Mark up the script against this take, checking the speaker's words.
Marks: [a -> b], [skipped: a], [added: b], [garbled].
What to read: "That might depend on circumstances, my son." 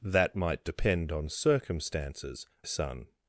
"That might depend on circumstances, [skipped: my] son."